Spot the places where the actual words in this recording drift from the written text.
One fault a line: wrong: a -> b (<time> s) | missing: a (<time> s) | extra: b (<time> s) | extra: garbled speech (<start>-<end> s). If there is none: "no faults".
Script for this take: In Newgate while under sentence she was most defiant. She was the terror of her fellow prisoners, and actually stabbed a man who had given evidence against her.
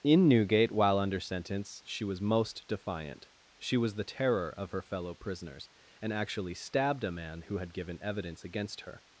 no faults